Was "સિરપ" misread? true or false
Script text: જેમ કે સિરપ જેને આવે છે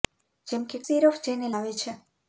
false